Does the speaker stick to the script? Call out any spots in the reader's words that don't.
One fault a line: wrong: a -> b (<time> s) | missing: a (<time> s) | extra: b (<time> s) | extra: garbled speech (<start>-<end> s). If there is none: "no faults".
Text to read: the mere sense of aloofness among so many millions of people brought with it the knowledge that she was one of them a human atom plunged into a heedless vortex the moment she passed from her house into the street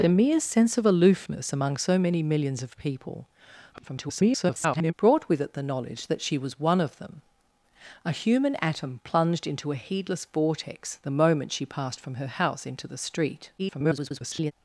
extra: garbled speech (3.7-4.9 s)
extra: garbled speech (13.6-14.5 s)